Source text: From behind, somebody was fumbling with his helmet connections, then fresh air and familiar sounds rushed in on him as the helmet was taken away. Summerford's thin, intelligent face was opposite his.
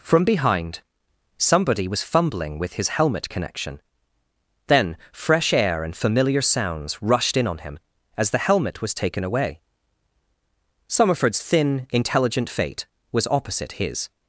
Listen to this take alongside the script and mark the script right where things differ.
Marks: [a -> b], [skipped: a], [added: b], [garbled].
From behind, somebody was fumbling with his helmet [connections, -> connection] then fresh air and familiar sounds rushed in on him as the helmet was taken away. Summerford's thin, intelligent [face -> fate] was opposite his.